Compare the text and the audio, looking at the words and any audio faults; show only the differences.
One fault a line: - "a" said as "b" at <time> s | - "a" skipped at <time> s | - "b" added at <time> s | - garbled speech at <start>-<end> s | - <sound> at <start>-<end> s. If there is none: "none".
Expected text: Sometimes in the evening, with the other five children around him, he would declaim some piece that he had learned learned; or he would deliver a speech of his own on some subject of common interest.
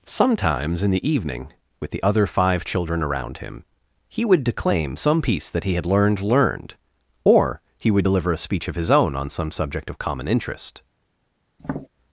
- tap at 11.6-11.9 s